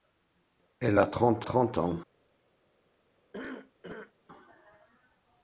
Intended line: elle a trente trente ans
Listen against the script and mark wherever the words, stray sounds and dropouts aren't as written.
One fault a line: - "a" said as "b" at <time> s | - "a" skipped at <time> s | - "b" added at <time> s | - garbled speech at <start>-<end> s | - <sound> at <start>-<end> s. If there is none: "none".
- cough at 3.3-4.1 s